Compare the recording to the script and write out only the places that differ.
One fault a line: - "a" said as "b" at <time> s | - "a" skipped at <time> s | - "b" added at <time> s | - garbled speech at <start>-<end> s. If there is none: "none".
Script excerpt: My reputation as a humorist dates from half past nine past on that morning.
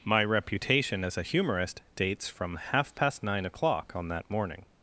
- "past" said as "o'clock" at 3.4 s